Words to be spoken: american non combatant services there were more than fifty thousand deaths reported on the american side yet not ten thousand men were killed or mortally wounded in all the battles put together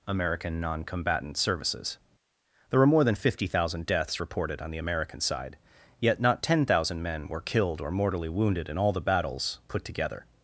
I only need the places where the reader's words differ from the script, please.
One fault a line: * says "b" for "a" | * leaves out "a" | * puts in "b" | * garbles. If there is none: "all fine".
all fine